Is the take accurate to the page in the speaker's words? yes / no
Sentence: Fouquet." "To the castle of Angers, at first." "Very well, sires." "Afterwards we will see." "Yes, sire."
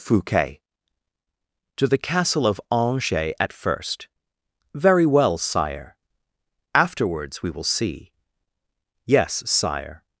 no